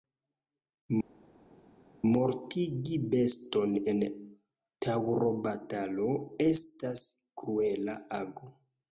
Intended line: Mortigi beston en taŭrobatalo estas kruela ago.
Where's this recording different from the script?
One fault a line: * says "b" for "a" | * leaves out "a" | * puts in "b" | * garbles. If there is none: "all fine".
all fine